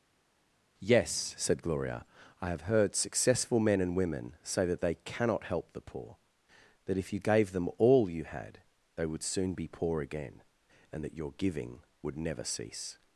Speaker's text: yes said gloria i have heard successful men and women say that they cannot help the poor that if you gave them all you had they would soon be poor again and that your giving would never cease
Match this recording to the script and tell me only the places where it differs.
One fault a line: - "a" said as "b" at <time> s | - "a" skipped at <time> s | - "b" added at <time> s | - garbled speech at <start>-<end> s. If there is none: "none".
none